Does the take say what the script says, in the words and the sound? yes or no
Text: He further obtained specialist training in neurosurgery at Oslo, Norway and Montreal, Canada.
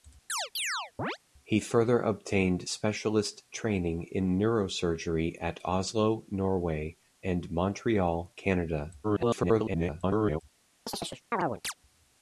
no